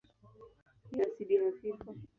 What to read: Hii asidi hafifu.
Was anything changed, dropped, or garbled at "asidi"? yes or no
no